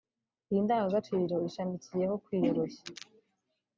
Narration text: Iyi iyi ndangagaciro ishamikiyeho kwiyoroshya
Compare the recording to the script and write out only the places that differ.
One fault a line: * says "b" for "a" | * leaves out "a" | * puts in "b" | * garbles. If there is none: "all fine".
* leaves out "iyi"